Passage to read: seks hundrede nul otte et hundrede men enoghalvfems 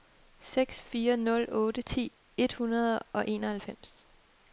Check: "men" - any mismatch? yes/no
yes